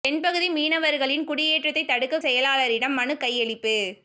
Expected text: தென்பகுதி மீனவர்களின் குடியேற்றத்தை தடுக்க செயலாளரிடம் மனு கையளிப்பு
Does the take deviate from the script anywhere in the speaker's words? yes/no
no